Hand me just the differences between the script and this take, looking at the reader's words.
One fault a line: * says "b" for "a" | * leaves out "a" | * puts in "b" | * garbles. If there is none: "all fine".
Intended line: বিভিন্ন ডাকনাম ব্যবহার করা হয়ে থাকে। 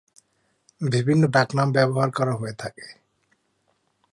all fine